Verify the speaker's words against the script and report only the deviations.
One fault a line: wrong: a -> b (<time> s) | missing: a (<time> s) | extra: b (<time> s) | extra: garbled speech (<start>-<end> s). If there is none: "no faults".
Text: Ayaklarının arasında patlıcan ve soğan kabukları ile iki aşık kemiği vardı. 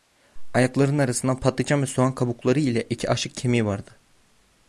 no faults